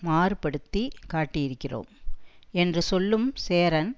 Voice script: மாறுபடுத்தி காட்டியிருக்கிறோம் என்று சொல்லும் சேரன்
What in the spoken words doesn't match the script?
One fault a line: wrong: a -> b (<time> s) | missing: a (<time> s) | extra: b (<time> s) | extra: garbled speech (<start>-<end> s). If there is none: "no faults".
no faults